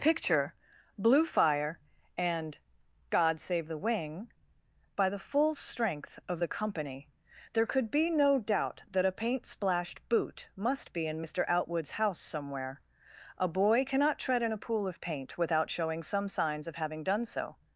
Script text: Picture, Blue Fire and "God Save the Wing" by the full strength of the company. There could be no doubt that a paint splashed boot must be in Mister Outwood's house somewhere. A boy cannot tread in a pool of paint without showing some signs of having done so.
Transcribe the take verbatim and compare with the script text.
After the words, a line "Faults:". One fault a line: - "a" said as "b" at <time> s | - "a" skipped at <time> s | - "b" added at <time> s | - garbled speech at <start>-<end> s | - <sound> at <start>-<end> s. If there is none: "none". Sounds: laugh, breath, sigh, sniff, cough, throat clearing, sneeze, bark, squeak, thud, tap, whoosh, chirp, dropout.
Picture, Blue Fire and "God Save the Wing" by the full strength of the company. There could be no doubt that a paint splashed boot must be in Mister Outwood's house somewhere. A boy cannot tread in a pool of paint without showing some signs of having done so.
Faults:
none